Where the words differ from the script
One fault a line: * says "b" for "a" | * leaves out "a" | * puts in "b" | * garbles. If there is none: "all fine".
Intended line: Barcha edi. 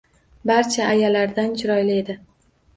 * puts in "ayalardan chiroyli"